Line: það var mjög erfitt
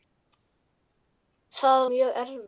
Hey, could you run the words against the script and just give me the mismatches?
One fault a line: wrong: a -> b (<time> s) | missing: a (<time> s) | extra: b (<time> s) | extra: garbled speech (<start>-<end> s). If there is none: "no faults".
missing: var (1.9 s)